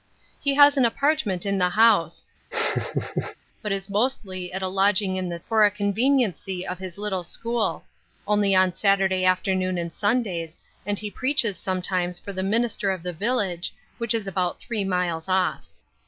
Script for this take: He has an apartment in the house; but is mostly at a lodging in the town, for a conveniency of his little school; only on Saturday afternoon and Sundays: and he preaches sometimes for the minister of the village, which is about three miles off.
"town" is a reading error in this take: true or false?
true